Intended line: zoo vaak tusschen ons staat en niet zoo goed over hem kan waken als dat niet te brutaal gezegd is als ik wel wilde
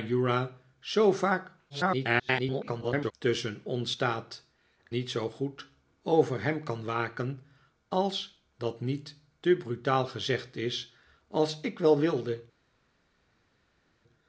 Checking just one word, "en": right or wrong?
wrong